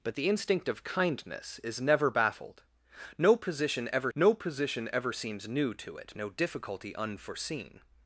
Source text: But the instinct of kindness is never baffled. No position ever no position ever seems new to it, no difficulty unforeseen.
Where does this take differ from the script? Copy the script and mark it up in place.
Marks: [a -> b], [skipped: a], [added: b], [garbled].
But the instinct of kindness is never baffled. No position ever no position ever seems new to it, no difficulty unforeseen.